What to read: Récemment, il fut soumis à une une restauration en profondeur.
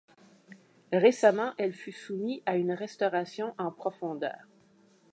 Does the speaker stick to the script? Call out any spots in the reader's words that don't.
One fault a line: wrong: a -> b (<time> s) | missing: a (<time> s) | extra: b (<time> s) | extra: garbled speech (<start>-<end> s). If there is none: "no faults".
wrong: il -> elle (1.6 s)
missing: une (2.7 s)